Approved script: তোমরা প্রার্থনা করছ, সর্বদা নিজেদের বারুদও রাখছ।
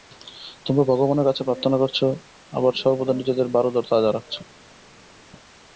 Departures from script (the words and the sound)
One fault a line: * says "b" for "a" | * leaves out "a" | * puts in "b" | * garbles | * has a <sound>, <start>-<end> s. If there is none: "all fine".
* puts in "ভগবানের কাছে"
* puts in "আবার"
* puts in "তাজা"